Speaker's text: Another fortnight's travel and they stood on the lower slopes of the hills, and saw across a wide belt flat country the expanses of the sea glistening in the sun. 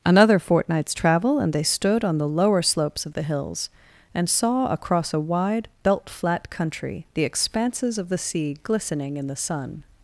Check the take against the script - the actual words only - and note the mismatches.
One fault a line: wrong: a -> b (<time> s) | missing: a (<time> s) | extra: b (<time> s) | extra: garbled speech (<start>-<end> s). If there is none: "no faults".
no faults